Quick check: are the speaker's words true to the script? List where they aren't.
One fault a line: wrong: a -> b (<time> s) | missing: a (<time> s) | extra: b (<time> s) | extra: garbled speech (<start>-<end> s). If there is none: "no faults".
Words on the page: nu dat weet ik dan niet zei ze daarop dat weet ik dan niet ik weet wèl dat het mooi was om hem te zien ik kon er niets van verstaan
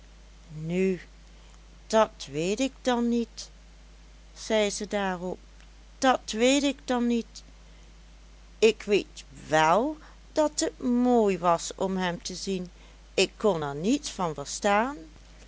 no faults